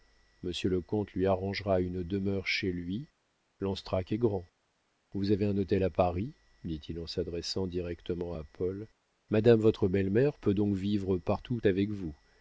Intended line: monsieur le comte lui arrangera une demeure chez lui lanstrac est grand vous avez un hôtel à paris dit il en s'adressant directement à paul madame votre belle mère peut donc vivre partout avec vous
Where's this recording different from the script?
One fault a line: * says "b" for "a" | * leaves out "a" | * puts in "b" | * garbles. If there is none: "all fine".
all fine